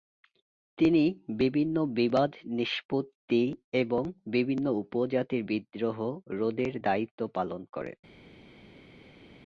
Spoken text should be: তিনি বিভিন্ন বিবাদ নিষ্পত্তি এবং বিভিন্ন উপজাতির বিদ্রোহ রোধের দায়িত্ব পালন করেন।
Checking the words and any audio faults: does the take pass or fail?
pass